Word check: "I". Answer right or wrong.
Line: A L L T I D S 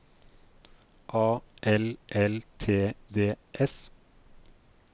wrong